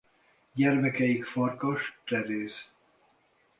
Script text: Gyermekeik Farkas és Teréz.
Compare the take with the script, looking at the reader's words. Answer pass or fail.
fail